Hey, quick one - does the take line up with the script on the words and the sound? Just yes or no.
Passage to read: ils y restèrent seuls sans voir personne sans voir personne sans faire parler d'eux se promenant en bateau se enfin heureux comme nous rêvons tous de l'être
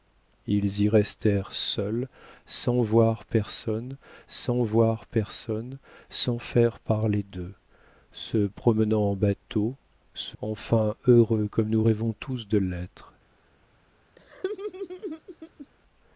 no